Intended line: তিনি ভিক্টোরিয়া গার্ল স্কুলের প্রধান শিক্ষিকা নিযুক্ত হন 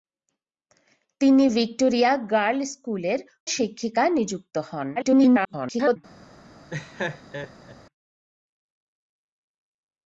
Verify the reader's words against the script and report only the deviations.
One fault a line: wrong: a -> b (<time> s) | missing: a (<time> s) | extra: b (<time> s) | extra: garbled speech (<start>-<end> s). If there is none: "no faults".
missing: প্রধান (3.2 s)
extra: garbled speech (5.0-6.0 s)